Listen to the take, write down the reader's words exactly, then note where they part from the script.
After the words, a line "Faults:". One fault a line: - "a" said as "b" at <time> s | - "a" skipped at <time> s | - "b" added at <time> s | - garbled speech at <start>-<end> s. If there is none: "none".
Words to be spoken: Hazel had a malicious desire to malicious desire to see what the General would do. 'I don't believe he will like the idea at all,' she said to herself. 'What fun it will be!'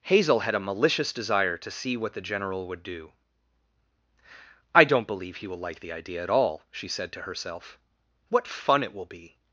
Hazel had a malicious desire to see what the General would do. 'I don't believe he will like the idea at all,' she said to herself. 'What fun it will be!'
Faults:
- "malicious desire to" skipped at 1.7 s